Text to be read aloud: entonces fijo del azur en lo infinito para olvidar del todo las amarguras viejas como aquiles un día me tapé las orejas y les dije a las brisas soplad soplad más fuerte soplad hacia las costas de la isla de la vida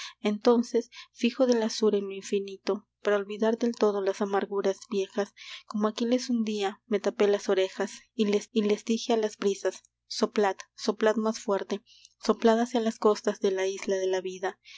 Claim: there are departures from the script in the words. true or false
true